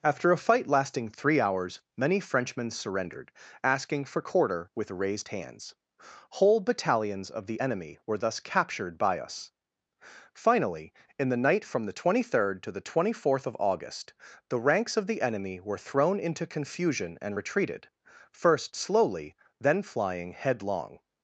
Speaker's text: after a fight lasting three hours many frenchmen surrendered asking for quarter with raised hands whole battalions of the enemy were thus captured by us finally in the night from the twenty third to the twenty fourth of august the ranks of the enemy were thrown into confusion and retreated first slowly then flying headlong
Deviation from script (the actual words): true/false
false